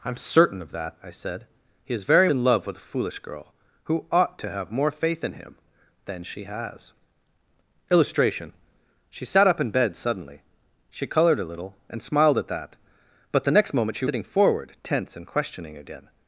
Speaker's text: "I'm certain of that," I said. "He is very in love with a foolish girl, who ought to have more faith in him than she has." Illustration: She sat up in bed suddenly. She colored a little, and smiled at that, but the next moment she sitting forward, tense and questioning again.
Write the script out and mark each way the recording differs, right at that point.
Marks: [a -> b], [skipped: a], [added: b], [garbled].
"I'm certain of that," I said. "He is very in love with a foolish girl, who ought to have more faith in him than she has." Illustration: She sat up in bed suddenly. She colored a little, and smiled at that, but the next moment she sitting forward, tense and questioning again.